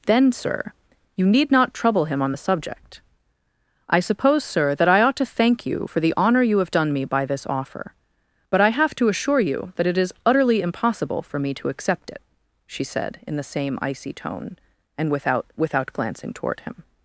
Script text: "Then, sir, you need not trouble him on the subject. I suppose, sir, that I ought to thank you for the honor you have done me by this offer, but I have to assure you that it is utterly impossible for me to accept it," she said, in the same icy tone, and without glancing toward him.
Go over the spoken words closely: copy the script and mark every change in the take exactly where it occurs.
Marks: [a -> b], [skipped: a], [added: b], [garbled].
"Then, sir, you need not trouble him on the subject. I suppose, sir, that I ought to thank you for the honor you have done me by this offer, but I have to assure you that it is utterly impossible for me to accept it," she said, in the same icy tone, and without [added: without] glancing toward him.